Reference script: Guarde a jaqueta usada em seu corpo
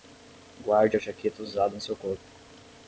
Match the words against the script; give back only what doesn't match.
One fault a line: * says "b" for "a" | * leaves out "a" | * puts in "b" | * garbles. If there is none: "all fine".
all fine